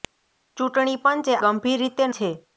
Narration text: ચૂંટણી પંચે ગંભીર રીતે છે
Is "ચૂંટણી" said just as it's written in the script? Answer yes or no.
yes